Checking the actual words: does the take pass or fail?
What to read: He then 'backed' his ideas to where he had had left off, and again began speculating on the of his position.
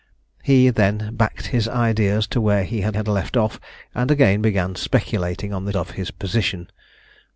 pass